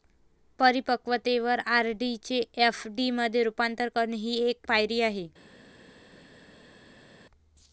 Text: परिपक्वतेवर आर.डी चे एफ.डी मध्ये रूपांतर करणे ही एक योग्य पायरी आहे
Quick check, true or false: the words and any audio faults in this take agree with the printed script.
false